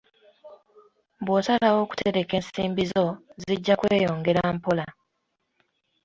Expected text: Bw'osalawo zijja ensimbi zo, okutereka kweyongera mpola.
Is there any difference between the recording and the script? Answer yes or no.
yes